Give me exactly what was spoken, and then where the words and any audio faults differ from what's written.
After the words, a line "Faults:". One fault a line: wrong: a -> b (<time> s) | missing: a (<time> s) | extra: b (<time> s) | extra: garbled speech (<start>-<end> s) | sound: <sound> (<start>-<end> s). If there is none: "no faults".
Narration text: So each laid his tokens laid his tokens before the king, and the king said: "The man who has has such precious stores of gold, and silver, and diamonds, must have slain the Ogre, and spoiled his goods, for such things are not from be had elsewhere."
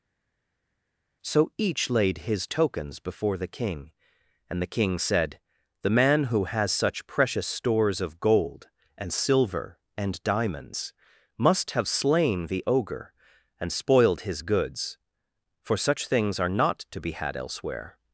So each laid his tokens before the king, and the king said: "The man who has such precious stores of gold, and silver, and diamonds, must have slain the Ogre, and spoiled his goods, for such things are not to be had elsewhere."
Faults:
missing: laid his tokens (3.0 s)
missing: has (6.7 s)
wrong: from -> to (16.9 s)